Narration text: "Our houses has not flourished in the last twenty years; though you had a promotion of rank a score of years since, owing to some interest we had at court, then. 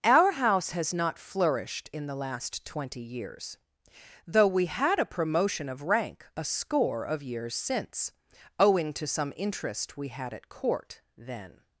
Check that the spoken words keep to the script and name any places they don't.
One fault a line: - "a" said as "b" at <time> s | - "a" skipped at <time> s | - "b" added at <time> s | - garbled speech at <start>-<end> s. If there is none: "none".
- "houses" said as "house" at 0.3 s
- "you" said as "we" at 4.5 s